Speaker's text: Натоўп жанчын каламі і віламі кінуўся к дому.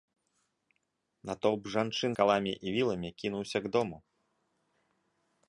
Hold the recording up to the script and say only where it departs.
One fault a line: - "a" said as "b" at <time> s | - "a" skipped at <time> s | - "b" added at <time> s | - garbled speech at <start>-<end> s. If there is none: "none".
none